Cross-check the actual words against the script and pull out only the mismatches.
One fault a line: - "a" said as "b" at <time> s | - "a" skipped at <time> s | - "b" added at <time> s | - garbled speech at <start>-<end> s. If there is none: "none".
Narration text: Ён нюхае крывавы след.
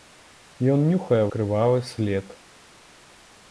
none